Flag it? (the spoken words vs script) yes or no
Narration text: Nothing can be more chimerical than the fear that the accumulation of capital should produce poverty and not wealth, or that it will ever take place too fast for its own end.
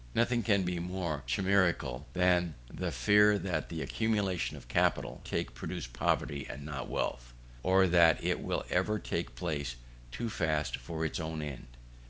yes